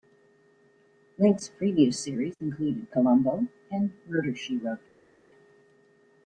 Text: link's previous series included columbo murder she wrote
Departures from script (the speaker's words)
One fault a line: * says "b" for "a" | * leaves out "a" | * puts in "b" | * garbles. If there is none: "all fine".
* puts in "and"